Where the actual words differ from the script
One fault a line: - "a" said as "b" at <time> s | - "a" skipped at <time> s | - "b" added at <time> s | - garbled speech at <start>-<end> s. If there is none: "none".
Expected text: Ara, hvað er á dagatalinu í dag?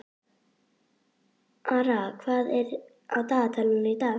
none